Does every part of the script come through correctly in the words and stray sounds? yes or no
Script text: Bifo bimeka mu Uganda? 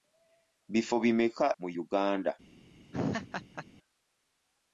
no